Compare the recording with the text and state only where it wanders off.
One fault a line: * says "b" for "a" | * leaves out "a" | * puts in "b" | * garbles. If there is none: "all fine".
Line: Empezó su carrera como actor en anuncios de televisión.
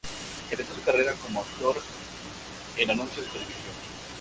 all fine